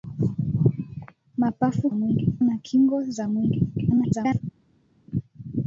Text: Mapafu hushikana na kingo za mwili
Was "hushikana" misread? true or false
true